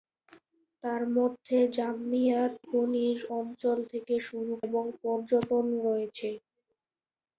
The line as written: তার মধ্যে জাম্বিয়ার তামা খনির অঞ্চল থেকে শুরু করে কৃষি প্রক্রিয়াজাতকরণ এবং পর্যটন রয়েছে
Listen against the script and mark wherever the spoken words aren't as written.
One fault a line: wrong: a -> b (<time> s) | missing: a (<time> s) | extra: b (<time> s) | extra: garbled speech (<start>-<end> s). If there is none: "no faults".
missing: তামা (2.5 s)
missing: করে কৃষি প্রক্রিয়াজাতকরণ (4.5 s)